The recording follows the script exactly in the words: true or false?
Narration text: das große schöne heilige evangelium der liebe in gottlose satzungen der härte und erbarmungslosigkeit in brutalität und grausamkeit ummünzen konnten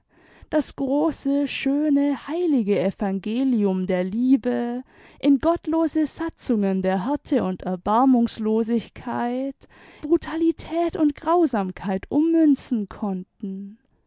false